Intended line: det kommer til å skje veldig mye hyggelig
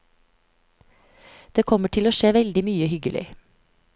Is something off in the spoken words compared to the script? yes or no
no